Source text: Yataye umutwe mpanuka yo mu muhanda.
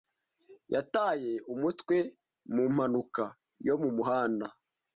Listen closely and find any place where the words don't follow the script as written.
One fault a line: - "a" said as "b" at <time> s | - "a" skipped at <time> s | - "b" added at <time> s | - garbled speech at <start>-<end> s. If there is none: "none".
- "mu" added at 2.5 s